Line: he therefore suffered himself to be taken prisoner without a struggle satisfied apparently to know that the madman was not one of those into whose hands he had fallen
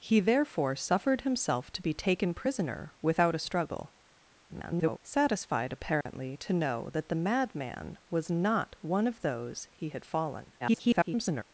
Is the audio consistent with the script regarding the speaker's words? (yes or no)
no